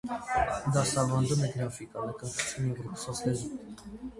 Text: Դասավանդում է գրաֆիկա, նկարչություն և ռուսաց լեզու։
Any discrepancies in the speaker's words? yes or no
yes